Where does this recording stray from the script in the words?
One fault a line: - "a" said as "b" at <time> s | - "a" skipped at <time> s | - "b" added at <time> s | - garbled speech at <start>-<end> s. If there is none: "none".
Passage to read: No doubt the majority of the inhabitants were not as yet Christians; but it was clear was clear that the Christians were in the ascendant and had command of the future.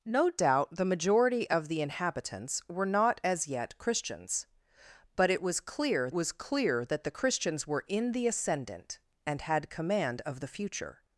none